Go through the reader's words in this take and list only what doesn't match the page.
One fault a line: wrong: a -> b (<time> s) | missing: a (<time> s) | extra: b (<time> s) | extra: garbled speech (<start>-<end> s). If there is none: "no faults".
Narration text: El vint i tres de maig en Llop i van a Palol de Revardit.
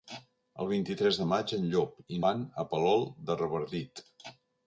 no faults